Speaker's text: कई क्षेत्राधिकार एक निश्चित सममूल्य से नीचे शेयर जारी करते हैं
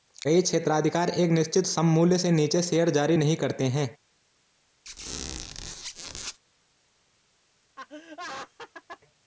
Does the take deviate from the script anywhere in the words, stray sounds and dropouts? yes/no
yes